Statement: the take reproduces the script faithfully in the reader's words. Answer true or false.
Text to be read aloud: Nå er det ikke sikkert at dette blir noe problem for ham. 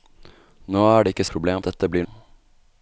false